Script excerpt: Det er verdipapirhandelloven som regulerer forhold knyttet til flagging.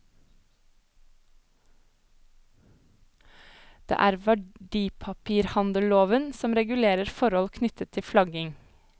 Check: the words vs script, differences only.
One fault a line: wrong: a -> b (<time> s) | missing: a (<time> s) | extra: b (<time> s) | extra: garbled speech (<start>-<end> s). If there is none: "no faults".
no faults